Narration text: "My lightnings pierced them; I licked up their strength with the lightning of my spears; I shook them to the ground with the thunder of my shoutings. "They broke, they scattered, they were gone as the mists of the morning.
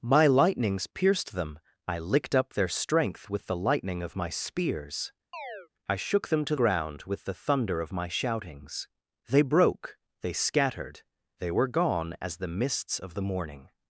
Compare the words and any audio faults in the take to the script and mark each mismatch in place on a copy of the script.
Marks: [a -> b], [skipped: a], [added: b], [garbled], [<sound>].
"My lightnings pierced them; I licked up their strength with the lightning of my spears; [chirp] I shook them to [skipped: the] ground with the thunder of my shoutings. "They broke, they scattered, they were gone as the mists of the morning.